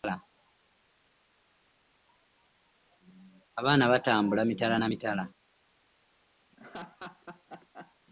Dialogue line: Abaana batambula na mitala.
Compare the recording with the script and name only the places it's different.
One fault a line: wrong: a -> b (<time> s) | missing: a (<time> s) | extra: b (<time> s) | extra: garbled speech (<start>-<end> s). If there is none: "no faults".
extra: mitala (4.4 s)